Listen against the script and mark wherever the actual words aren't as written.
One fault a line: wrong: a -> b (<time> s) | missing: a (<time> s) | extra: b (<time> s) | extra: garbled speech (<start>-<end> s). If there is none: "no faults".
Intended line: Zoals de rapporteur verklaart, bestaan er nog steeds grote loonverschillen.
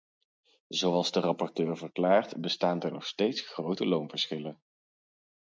no faults